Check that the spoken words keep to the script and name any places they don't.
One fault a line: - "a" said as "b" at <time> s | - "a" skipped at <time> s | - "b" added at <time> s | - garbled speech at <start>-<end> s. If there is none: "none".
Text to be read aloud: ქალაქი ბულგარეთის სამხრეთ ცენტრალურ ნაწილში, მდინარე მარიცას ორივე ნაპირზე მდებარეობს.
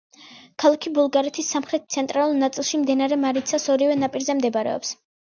none